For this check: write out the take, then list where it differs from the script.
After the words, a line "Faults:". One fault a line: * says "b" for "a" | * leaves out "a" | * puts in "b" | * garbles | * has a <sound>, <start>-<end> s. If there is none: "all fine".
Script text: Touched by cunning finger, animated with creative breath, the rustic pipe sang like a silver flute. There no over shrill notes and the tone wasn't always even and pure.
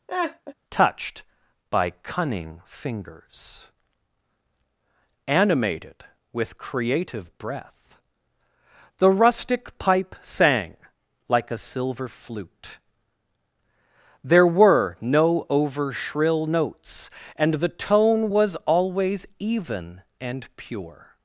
Touched by cunning fingers, animated with creative breath, the rustic pipe sang like a silver flute. There were no over shrill notes and the tone was always even and pure.
Faults:
* has a laugh, 0.1-0.5 s
* says "fingers" for "finger"
* puts in "were"
* says "was" for "wasn't"